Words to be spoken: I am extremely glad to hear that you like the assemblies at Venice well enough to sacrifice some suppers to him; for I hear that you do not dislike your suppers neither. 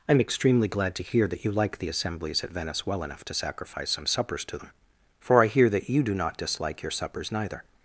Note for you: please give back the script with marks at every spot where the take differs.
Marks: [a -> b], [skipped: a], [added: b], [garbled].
I am extremely glad to hear that you like the assemblies at Venice well enough to sacrifice some suppers to [him; -> them] for I hear that you do not dislike your suppers neither.